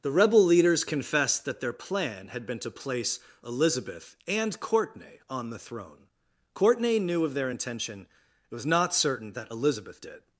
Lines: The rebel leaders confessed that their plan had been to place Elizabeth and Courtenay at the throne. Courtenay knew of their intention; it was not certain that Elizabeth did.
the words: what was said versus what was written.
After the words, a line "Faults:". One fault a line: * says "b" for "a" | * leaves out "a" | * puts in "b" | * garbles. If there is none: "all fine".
The rebel leaders confessed that their plan had been to place Elizabeth and Courtenay on the throne. Courtenay knew of their intention; it was not certain that Elizabeth did.
Faults:
* says "on" for "at"